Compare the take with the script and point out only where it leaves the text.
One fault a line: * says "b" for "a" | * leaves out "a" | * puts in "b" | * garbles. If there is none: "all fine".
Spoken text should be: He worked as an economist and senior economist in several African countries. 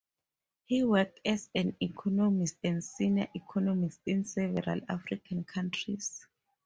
all fine